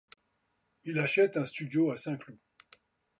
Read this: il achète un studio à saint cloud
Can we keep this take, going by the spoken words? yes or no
yes